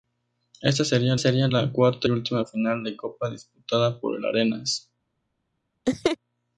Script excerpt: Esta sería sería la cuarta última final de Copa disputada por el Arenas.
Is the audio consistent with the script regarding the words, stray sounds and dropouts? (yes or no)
no